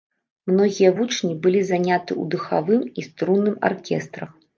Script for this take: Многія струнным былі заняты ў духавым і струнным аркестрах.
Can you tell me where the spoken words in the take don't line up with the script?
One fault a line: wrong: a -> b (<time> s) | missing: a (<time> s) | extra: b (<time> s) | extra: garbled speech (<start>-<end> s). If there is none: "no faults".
wrong: струнным -> вучні (1.0 s)